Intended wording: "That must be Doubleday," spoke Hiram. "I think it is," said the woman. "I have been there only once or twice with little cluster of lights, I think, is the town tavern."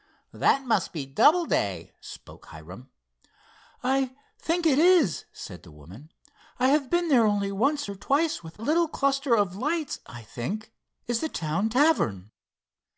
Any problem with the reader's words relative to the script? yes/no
no